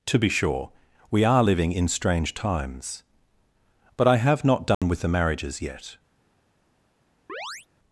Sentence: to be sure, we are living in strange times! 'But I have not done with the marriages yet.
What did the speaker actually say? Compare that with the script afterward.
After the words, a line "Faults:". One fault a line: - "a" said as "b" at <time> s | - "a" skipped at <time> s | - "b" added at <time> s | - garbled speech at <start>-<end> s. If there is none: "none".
to be sure, we are living in strange times! 'But I have not done with the marriages yet.
Faults:
none